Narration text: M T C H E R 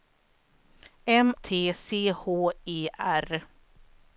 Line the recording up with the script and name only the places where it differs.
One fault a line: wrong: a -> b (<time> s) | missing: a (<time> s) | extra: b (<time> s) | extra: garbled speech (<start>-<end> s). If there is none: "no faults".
no faults